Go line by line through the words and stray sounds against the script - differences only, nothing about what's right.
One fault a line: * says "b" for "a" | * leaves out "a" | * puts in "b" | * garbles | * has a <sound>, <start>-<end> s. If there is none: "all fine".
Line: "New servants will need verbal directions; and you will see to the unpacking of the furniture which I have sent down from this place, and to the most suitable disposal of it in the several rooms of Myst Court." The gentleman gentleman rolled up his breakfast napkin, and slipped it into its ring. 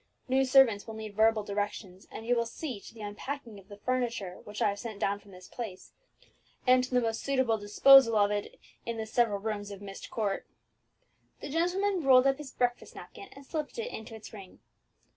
* leaves out "gentleman"